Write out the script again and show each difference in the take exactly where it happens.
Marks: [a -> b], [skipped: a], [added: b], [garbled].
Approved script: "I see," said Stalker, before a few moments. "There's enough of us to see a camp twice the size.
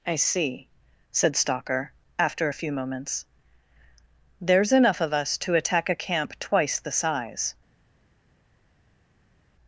"I see," said Stalker, [before -> after] a few moments. "There's enough of us to [see -> attack] a camp twice the size.